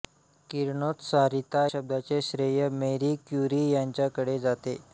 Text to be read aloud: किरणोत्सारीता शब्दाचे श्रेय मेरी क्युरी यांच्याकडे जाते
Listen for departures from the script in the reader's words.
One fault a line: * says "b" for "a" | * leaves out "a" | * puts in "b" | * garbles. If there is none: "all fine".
all fine